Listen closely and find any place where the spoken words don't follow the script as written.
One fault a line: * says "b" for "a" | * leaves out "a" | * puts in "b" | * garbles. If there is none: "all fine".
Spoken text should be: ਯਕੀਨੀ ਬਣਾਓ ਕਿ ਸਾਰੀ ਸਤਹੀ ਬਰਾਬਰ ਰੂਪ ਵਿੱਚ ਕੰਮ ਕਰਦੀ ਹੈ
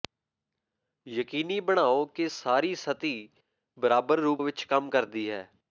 all fine